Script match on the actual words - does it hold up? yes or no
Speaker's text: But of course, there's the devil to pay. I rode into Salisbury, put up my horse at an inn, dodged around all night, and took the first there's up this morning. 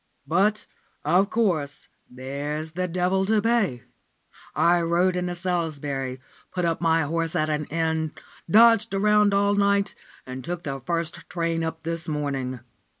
no